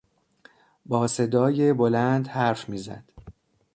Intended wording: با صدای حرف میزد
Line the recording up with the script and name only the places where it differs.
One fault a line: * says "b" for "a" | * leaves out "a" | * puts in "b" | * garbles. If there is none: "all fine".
* puts in "بلند"